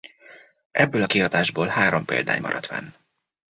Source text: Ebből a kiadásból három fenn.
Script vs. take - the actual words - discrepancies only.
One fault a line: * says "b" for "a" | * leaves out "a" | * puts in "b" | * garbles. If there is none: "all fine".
* puts in "példány maradt"